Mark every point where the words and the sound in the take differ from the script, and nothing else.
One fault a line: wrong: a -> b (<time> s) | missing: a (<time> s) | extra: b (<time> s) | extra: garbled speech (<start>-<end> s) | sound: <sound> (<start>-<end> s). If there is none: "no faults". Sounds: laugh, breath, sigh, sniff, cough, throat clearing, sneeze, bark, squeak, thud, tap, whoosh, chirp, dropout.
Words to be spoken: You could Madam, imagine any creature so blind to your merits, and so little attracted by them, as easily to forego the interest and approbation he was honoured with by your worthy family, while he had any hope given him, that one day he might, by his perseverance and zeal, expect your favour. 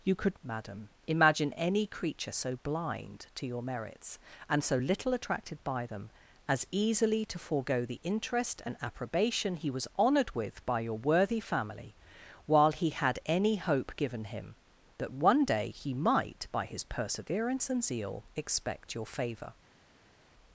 no faults